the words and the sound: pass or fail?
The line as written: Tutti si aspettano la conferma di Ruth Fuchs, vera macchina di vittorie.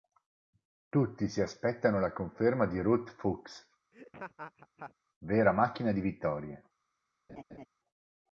fail